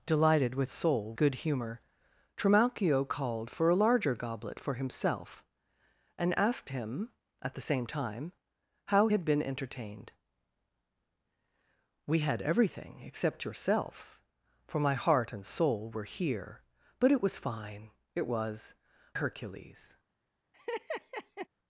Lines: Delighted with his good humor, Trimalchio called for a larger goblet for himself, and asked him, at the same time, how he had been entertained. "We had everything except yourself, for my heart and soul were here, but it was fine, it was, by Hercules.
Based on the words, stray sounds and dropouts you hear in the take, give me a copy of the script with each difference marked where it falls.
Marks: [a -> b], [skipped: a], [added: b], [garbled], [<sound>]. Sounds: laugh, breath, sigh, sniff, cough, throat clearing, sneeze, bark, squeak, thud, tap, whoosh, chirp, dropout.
Delighted with [his -> soul] good humor, Trimalchio called for a larger goblet for himself, and asked him, at the same time, how [skipped: he] had been entertained. "We had everything except yourself, for my heart and soul were here, but it was fine, it was, [skipped: by] Hercules. [laugh]